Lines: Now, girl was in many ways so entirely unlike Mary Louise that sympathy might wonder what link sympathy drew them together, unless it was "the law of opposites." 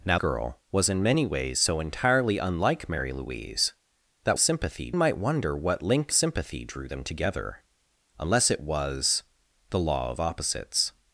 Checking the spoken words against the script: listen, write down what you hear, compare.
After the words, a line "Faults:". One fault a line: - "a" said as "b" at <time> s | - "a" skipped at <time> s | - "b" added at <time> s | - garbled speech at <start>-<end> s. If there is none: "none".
Now, girl was in many ways so entirely unlike Mary Louise that sympathy might wonder what link sympathy drew them together, unless it was "the law of opposites."
Faults:
none